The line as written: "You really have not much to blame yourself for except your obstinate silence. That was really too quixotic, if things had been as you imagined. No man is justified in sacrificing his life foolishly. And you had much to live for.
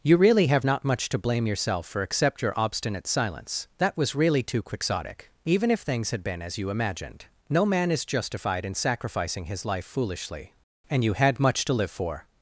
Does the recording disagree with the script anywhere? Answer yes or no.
yes